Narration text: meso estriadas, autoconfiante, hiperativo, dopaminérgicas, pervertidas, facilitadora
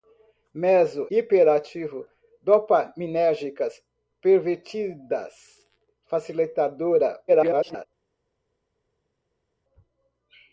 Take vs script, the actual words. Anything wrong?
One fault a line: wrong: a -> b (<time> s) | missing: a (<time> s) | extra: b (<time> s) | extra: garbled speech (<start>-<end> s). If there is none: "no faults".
missing: estriadas autoconfiante (1.1 s)
extra: garbled speech (7.3-7.9 s)